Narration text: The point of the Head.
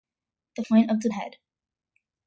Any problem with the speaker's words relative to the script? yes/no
no